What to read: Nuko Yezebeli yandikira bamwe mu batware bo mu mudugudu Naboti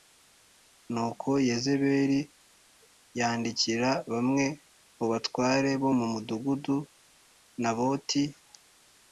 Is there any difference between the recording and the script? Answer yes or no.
no